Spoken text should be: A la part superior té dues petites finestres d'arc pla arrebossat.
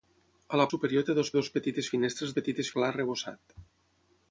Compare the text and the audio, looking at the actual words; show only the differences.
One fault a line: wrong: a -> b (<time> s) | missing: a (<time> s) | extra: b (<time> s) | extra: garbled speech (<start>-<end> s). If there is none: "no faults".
missing: part (0.7 s)
extra: dues (1.4 s)
wrong: d'arc -> petites (2.4 s)